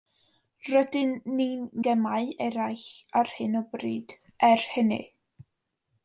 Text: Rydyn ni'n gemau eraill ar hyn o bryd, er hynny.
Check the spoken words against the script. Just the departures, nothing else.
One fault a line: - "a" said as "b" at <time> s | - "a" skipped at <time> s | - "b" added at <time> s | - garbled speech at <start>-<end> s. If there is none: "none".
none